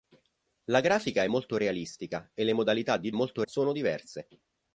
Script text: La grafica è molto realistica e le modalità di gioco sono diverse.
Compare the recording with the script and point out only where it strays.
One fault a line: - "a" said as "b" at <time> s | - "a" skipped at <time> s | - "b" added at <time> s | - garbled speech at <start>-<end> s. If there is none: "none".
- "gioco" said as "molto" at 3.1 s